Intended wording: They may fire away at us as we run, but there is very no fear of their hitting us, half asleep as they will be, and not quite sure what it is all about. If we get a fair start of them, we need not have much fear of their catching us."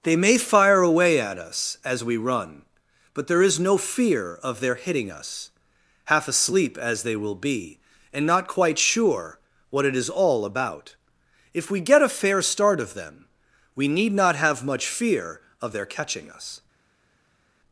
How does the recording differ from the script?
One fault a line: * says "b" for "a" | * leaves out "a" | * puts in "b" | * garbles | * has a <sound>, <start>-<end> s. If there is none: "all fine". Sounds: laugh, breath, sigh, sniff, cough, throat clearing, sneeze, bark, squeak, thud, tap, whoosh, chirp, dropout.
* leaves out "very"